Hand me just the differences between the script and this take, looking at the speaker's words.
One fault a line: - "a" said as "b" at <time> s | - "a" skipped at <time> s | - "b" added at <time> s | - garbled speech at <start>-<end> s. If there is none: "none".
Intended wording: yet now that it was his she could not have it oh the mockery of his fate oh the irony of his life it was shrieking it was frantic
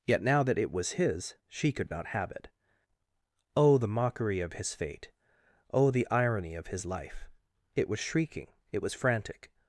none